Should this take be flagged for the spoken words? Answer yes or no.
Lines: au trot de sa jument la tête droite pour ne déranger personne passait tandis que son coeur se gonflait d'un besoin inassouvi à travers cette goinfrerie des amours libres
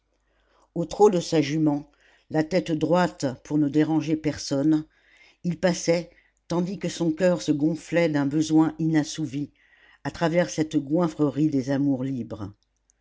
yes